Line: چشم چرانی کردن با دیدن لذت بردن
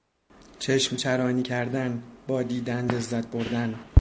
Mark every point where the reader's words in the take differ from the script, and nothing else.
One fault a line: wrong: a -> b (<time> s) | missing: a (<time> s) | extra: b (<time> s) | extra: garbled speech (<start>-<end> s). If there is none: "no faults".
no faults